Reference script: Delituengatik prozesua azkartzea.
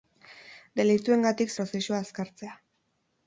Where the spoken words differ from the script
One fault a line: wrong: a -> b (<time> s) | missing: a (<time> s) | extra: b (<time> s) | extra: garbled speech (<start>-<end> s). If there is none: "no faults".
no faults